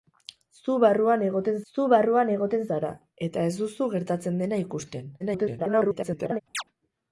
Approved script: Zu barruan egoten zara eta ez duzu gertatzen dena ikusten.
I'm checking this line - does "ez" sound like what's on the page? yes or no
yes